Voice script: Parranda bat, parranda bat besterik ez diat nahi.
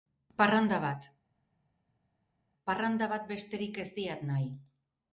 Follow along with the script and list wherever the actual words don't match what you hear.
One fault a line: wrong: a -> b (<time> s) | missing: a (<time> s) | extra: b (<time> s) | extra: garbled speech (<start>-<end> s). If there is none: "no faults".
no faults